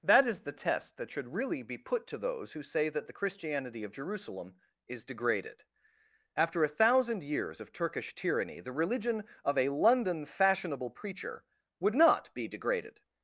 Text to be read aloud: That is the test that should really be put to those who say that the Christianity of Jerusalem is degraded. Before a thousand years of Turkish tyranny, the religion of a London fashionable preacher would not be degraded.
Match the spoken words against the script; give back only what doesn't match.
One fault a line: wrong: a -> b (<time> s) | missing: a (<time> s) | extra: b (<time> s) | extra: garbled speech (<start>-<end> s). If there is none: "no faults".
wrong: Before -> After (6.3 s)